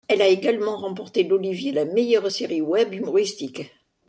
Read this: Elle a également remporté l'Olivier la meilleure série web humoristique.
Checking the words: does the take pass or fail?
pass